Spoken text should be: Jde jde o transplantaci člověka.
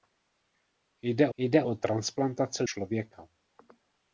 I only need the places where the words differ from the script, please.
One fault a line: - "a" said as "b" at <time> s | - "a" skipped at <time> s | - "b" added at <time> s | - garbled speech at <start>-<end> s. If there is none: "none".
none